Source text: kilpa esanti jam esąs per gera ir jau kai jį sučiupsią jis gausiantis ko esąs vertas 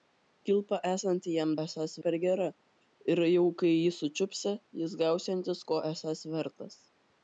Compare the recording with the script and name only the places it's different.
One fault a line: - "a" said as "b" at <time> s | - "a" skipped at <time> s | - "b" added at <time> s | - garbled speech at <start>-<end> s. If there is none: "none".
none